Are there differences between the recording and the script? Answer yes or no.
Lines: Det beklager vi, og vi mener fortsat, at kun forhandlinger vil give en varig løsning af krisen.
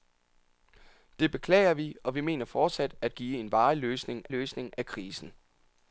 yes